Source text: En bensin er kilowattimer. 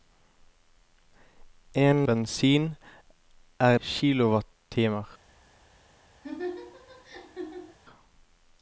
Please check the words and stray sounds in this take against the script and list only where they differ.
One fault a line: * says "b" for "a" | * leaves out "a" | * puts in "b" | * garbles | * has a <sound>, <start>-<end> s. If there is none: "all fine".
* has a laugh, 6.2-7.8 s